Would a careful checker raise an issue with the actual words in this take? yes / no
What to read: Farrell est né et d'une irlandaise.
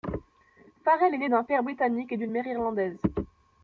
yes